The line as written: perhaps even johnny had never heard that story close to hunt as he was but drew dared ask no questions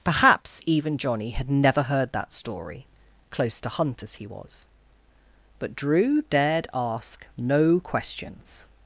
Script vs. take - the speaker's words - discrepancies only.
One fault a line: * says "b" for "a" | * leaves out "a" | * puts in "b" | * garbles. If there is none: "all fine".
all fine